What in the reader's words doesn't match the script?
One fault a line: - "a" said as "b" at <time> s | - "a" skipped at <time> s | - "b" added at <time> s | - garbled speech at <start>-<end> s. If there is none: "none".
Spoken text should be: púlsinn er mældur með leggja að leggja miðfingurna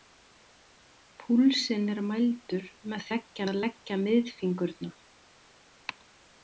none